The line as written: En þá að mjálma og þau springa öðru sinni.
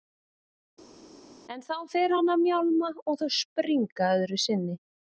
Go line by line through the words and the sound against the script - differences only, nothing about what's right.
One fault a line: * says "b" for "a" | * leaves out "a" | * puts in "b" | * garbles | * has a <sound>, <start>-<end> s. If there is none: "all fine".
* puts in "fer hann"